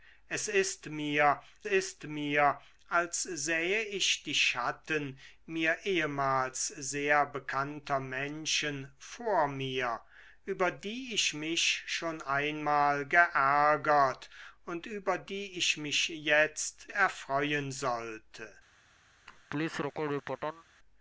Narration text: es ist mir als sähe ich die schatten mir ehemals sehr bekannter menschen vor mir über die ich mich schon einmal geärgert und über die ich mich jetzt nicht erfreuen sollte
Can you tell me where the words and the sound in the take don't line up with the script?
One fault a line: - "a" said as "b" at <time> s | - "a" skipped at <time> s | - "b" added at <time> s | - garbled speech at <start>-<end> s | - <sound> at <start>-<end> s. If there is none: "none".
- "ist mir" added at 1.6 s
- "nicht" skipped at 16.9 s
- laugh at 19.3-20.6 s